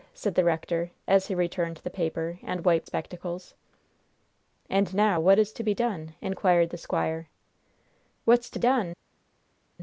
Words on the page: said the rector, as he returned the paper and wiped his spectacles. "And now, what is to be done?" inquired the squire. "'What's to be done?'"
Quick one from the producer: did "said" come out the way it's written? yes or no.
yes